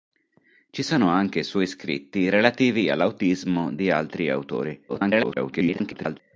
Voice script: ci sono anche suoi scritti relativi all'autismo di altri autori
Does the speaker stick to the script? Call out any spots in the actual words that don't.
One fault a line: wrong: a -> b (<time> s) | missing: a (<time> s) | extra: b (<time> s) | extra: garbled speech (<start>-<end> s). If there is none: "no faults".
extra: garbled speech (4.9-6.2 s)